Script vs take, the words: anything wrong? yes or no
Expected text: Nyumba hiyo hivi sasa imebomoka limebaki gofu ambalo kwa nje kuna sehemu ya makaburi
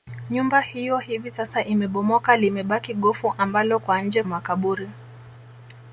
yes